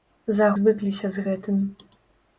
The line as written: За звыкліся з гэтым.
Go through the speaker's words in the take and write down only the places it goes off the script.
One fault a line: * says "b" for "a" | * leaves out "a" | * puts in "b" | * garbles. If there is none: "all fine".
all fine